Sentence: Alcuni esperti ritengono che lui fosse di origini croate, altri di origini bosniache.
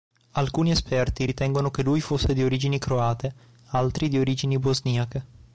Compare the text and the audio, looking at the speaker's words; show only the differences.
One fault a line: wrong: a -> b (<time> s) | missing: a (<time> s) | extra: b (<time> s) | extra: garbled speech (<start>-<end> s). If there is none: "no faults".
no faults